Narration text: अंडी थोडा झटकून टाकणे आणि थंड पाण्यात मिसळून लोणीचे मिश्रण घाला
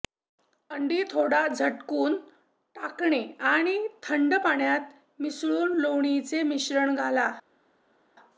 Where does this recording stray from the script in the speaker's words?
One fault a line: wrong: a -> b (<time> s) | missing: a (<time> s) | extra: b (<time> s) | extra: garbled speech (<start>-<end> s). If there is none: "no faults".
no faults